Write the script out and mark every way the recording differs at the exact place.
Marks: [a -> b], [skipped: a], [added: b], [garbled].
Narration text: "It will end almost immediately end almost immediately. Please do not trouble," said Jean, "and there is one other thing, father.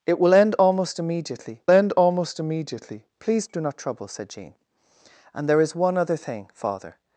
"It will end almost immediately end almost immediately. Please do not trouble," said Jean, "and there is one other thing, father.